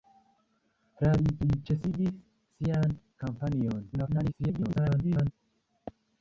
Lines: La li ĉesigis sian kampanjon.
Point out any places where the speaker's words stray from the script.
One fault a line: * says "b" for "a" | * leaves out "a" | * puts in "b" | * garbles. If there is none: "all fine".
* puts in "li"
* garbles